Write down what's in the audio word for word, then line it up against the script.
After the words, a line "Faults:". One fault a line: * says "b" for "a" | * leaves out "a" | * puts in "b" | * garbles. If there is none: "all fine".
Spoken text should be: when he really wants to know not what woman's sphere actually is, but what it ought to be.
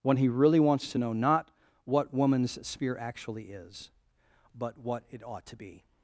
when he really wants to know not what woman's sphere actually is, but what it ought to be.
Faults:
all fine